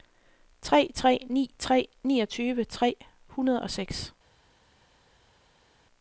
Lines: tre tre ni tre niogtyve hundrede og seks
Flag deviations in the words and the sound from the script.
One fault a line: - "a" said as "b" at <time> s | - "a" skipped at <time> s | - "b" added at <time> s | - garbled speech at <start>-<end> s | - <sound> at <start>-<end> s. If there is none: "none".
- "tre" added at 2.6 s